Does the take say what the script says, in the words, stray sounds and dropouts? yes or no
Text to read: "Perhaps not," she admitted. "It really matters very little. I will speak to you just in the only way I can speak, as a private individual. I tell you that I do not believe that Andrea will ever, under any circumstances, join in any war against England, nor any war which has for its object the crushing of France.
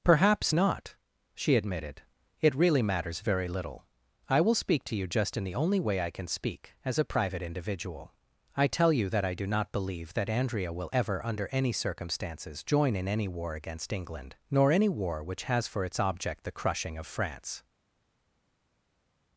yes